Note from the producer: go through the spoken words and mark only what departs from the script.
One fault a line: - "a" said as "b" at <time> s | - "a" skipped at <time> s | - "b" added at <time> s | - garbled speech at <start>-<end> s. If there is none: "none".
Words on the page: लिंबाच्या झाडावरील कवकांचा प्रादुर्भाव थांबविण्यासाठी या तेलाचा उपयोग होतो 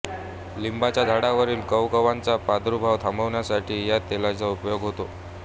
none